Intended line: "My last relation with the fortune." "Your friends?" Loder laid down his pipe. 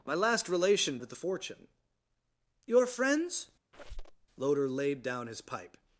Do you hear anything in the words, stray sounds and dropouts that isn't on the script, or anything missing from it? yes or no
yes